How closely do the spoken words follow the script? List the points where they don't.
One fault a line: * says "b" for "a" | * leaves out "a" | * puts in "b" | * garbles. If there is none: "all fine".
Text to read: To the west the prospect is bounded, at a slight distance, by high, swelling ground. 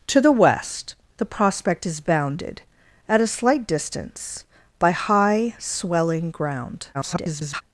* garbles